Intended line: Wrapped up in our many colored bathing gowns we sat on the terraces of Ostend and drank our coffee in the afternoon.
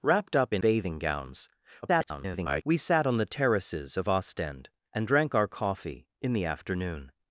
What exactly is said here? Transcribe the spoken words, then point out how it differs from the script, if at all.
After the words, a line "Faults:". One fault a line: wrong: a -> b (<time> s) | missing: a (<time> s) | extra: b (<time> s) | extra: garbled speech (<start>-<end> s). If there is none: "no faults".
Wrapped up in bathing gowns [garbled] we sat on the terraces of Ostend and drank our coffee in the afternoon.
Faults:
missing: our many colored (0.6 s)
extra: garbled speech (1.8-2.6 s)